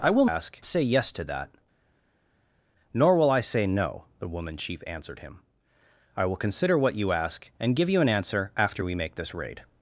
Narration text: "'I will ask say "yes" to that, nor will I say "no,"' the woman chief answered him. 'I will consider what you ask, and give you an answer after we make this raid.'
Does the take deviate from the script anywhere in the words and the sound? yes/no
no